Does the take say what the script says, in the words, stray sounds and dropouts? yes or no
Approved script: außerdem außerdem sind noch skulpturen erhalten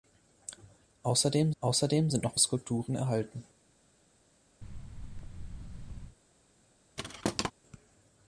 no